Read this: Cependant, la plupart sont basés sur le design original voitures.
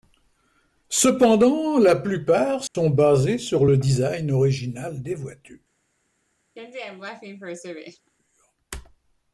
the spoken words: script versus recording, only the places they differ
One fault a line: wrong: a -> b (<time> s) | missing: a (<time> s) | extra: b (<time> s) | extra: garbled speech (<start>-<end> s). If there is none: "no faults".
extra: des (5.0 s)